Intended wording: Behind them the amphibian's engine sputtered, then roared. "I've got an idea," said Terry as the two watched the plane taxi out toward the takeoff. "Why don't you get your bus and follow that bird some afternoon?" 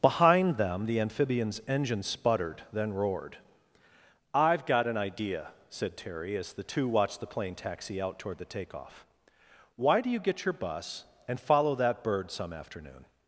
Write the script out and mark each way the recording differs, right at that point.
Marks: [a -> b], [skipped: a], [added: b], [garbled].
Behind them the amphibian's engine sputtered, then roared. "I've got an idea," said Terry as the two watched the plane taxi out toward the takeoff. "Why [don't -> do] you get your bus and follow that bird some afternoon?"